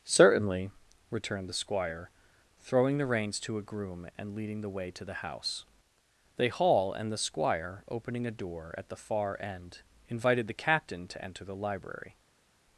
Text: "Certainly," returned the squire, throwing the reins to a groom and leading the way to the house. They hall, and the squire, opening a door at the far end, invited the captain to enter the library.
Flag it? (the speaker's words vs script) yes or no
no